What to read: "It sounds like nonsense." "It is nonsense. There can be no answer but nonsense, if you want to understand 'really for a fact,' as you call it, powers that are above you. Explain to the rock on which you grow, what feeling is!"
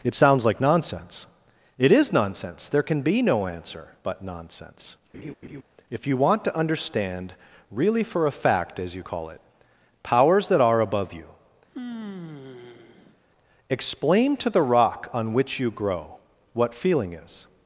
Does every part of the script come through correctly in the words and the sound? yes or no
no